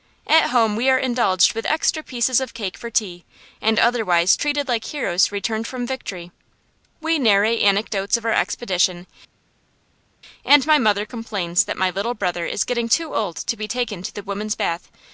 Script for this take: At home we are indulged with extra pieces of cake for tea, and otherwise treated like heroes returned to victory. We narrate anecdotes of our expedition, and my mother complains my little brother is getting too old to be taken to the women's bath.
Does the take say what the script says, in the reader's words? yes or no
no